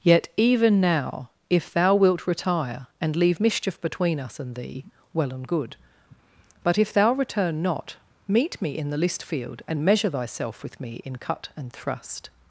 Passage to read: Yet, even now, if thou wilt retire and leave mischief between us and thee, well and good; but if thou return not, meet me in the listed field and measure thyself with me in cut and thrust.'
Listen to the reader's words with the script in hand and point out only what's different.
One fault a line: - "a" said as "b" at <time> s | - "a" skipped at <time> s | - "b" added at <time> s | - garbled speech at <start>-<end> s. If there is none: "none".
- "listed" said as "list" at 9.0 s